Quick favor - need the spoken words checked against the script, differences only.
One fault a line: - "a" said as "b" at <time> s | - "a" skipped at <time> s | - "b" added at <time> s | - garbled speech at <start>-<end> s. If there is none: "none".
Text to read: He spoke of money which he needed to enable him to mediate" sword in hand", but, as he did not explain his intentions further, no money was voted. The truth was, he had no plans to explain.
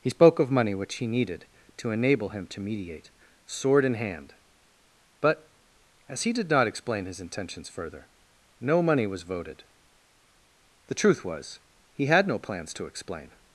none